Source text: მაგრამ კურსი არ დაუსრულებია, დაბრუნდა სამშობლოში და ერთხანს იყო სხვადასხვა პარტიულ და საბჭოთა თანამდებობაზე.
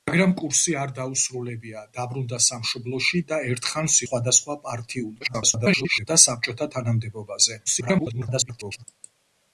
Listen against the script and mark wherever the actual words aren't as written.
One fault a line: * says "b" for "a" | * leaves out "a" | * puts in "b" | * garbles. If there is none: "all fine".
* leaves out "იყო"
* garbles
* garbles